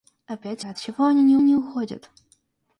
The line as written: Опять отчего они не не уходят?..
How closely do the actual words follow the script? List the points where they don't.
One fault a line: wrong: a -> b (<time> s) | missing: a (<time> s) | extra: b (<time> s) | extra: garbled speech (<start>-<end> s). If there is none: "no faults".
no faults